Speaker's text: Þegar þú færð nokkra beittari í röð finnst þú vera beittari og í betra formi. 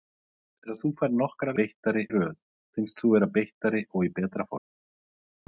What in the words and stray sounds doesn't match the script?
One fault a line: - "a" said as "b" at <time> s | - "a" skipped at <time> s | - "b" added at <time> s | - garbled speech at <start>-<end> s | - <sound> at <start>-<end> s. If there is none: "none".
none